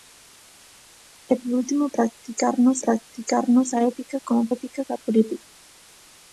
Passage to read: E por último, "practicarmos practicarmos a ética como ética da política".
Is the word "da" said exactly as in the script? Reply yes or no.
yes